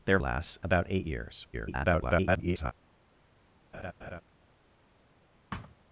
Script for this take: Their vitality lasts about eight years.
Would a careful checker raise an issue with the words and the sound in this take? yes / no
yes